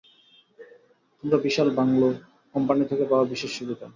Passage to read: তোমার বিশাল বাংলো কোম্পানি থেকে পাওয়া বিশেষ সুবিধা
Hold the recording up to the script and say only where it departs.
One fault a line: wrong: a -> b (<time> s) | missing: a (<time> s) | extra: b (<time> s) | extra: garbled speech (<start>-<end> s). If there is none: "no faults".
no faults